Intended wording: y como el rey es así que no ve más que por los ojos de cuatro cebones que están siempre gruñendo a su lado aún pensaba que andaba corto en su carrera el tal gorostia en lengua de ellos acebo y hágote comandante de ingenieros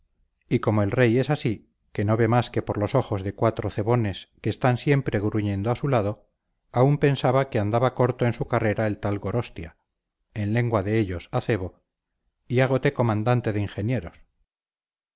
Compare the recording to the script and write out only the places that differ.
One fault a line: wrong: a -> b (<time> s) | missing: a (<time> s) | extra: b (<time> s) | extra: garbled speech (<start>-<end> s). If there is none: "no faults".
no faults